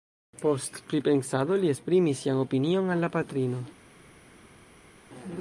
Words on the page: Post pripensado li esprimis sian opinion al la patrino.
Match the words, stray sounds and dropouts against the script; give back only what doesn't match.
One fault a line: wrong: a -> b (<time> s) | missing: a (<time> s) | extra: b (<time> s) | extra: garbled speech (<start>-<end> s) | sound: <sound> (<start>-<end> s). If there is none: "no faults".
no faults